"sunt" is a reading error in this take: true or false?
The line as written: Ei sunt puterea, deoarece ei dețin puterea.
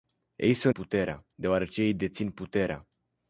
false